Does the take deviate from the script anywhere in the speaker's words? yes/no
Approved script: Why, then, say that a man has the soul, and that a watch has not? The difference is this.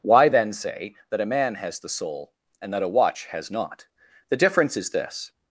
no